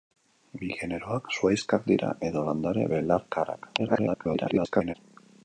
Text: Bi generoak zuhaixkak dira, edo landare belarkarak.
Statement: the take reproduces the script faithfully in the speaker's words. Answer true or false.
false